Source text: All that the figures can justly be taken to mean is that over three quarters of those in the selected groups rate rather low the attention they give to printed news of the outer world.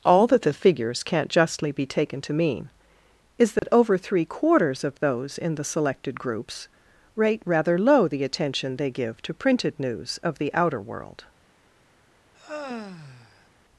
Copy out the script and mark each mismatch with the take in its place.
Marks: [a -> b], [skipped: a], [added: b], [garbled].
All that the figures [can -> can't] justly be taken to mean is that over three quarters of those in the selected groups rate rather low the attention they give to printed news of the outer world.